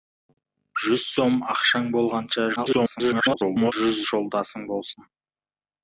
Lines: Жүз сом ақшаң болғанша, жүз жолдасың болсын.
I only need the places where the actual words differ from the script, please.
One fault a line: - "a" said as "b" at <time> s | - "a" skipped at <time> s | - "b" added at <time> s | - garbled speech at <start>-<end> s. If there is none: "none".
- garbled speech at 2.6-3.7 s